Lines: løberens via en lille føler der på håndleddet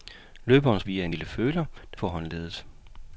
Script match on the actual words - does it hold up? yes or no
yes